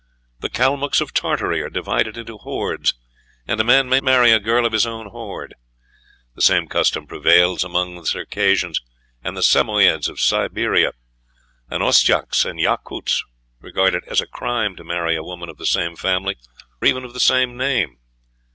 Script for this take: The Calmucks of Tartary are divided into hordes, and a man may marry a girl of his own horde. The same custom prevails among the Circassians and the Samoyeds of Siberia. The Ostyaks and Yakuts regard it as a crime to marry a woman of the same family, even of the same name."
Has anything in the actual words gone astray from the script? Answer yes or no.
no